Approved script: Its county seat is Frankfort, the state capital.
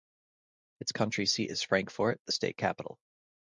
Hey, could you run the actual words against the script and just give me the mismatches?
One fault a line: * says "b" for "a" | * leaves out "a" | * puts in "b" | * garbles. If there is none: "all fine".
all fine